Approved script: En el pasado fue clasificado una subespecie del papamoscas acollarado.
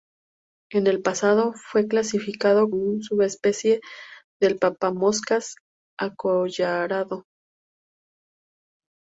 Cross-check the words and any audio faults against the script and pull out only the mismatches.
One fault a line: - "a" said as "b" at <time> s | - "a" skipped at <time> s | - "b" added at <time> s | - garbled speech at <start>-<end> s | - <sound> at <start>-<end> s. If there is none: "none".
none